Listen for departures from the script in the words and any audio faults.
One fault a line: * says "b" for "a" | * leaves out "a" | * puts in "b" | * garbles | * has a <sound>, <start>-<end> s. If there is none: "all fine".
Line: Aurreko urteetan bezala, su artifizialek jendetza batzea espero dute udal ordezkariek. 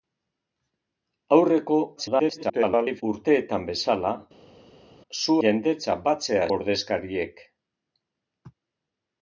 * garbles
* leaves out "artifizialek"
* leaves out "espero dute udal"